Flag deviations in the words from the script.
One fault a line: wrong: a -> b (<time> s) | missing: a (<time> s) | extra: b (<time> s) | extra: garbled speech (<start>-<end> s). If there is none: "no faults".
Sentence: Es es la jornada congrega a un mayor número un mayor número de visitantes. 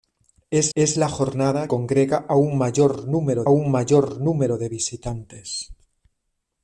no faults